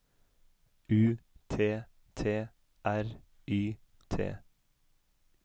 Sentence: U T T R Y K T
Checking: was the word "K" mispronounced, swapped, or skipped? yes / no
yes